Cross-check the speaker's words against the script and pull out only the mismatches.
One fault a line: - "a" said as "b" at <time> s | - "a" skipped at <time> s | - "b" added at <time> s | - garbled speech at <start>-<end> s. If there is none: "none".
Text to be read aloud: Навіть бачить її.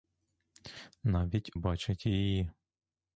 none